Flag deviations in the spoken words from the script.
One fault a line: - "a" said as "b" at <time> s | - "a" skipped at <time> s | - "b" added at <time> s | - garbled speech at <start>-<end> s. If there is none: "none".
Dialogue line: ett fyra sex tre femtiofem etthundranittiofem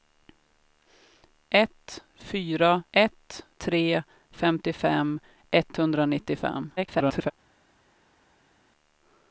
- "sex" said as "ett" at 2.9 s
- garbled speech at 6.8-7.3 s